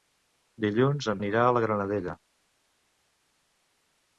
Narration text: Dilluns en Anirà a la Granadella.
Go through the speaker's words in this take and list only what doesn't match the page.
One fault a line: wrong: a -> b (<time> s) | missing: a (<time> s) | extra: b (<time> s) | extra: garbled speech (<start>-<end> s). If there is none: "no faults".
no faults